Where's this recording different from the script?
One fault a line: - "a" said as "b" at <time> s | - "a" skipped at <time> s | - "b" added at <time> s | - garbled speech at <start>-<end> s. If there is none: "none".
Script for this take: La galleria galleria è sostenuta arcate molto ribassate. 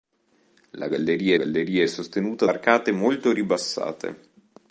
none